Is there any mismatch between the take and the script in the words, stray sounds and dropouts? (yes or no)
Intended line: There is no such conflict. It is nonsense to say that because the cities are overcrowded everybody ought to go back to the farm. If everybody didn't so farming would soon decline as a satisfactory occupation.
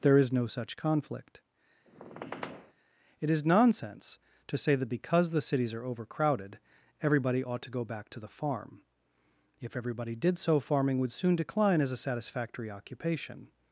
yes